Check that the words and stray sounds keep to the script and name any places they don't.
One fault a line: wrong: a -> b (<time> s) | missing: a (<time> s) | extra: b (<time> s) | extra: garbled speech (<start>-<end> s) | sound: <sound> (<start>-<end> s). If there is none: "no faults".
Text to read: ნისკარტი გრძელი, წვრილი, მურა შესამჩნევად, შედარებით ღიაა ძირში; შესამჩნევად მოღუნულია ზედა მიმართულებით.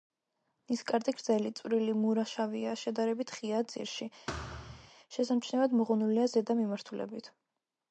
wrong: შესამჩნევად -> შავია (2.3 s)
sound: thud (4.3-4.9 s)